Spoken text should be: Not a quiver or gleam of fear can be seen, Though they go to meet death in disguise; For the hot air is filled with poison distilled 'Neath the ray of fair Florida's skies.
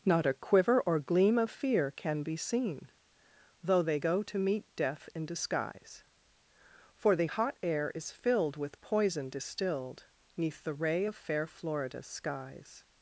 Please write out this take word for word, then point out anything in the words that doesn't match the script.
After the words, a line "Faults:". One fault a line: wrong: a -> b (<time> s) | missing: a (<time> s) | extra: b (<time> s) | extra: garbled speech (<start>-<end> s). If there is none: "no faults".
Not a quiver or gleam of fear can be seen, Though they go to meet death in disguise; For the hot air is filled with poison distilled 'Neath the ray of fair Florida's skies.
Faults:
no faults